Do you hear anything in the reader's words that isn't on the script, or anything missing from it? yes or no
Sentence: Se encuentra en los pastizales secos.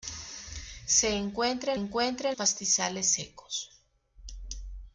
yes